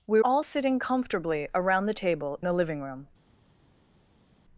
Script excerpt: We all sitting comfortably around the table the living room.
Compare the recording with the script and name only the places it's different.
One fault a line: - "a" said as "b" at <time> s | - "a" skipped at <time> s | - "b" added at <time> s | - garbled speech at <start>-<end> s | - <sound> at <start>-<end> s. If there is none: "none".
none